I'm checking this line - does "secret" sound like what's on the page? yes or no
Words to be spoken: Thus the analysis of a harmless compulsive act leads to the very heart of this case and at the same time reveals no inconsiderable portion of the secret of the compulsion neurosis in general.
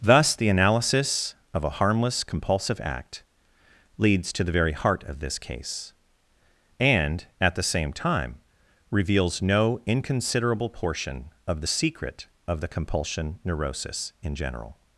yes